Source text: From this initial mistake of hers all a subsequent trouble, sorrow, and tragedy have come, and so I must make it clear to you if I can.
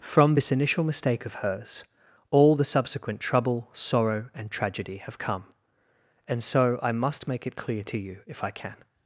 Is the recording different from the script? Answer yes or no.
yes